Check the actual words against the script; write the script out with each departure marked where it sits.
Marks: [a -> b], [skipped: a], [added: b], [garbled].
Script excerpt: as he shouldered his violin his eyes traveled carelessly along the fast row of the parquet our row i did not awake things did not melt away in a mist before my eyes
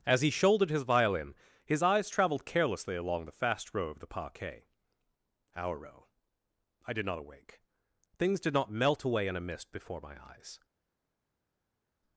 as he shouldered his violin his eyes traveled carelessly along the fast row of the parquet our row i did not awake things did not melt away in a mist before my eyes